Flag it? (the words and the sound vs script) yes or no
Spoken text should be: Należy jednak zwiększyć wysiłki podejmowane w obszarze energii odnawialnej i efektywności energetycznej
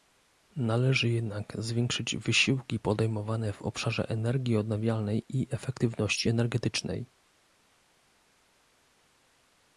no